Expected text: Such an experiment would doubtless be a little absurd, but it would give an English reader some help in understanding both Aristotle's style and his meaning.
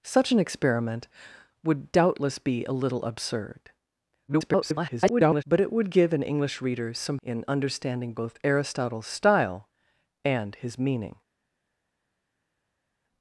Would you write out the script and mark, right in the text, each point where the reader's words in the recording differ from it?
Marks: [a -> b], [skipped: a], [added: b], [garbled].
Such an experiment would doubtless be a little absurd, [garbled] but it would give an English reader some [skipped: help] in understanding both Aristotle's style and his meaning.